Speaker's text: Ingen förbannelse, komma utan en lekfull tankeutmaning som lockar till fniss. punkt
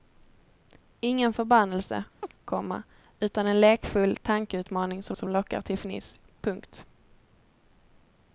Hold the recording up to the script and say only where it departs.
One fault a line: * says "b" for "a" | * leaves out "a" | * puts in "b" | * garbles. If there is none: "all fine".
* puts in "som"